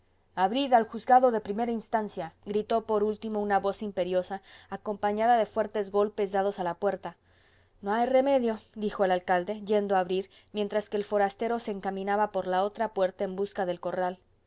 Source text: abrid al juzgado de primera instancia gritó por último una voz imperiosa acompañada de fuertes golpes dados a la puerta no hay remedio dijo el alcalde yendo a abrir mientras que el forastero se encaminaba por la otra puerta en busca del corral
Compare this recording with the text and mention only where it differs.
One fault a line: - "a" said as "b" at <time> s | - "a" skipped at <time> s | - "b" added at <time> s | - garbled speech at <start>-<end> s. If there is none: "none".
none